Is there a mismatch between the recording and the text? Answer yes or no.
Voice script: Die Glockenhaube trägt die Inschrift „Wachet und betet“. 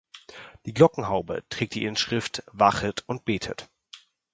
no